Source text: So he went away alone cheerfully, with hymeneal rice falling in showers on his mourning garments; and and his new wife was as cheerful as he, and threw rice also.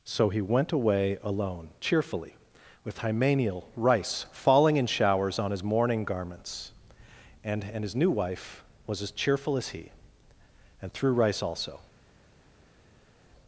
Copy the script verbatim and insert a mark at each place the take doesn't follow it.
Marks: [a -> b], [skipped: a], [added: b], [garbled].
So he went away alone cheerfully, with hymeneal rice falling in showers on his mourning garments; and and his new wife was as cheerful as he, and threw rice also.